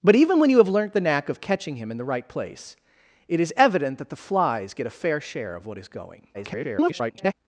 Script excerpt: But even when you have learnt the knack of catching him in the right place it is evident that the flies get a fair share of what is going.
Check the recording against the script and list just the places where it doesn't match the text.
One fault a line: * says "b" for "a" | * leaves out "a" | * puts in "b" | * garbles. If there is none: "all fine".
* garbles